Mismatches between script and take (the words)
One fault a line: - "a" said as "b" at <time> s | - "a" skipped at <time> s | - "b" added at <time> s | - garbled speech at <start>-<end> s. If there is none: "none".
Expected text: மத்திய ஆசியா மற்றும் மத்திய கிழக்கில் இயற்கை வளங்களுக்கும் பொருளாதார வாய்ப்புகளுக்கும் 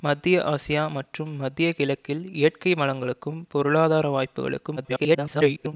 - garbled speech at 4.8-5.7 s